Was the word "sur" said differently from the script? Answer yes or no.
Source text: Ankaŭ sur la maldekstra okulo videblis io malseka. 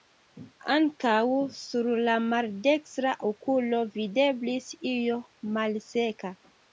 no